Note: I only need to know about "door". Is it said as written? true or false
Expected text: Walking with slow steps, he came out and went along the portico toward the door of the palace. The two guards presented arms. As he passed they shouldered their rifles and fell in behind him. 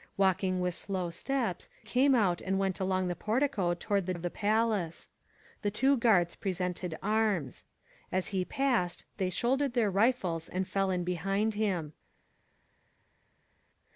false